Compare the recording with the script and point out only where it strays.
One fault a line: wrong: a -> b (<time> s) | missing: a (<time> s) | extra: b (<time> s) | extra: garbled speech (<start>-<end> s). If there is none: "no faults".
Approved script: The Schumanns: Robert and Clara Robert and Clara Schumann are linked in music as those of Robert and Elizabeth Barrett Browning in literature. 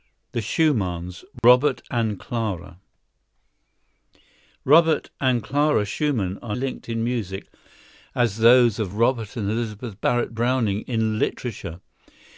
no faults